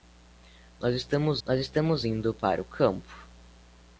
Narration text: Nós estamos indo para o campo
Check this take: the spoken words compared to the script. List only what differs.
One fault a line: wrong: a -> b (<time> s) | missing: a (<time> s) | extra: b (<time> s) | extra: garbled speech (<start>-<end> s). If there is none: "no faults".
extra: nós estamos (1.4 s)